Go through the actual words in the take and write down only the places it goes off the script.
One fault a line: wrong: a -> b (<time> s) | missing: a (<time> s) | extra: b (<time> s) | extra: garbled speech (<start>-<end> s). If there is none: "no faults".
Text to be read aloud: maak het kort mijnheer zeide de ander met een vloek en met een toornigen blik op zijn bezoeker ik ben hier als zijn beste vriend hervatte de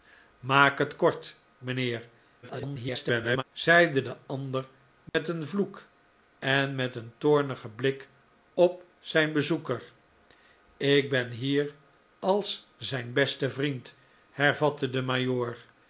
extra: garbled speech (2.4-3.4 s)